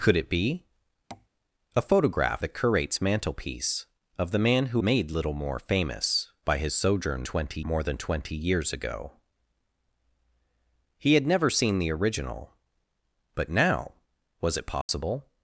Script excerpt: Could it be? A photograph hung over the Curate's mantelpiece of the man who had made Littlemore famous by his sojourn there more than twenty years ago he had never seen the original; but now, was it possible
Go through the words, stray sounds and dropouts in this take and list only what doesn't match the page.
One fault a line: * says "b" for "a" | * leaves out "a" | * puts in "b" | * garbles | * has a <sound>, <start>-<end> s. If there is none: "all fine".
* has a tap, 1.1-1.3 s
* leaves out "hung over"
* leaves out "had"
* says "twenty" for "there"
* has a dropout, 14.8-14.9 s